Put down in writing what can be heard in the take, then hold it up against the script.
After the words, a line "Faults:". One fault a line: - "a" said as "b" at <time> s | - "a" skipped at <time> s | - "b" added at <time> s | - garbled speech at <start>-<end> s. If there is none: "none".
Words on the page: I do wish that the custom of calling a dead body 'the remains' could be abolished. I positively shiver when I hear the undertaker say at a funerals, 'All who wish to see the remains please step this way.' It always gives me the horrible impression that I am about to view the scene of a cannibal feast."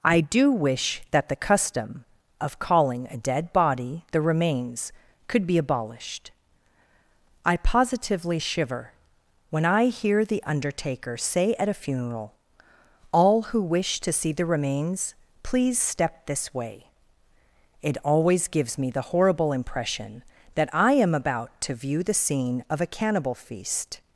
I do wish that the custom of calling a dead body 'the remains' could be abolished. I positively shiver when I hear the undertaker say at a funeral, 'All who wish to see the remains please step this way.' It always gives me the horrible impression that I am about to view the scene of a cannibal feast."
Faults:
- "funerals" said as "funeral" at 11.8 s